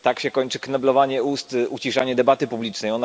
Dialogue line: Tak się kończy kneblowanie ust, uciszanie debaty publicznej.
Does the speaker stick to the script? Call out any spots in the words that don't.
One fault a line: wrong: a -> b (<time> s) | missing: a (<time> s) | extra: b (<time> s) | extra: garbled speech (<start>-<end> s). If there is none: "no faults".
no faults